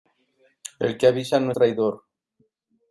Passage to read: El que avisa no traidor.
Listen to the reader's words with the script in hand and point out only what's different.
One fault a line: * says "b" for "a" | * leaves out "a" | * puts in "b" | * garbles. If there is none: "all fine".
all fine